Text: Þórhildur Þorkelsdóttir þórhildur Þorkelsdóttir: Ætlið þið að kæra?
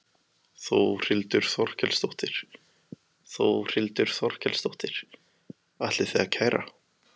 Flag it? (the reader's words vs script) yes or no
no